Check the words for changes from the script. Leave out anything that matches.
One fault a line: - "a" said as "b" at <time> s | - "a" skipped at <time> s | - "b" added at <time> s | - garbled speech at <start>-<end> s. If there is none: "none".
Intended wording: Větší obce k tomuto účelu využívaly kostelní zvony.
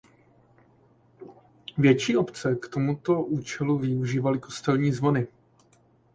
none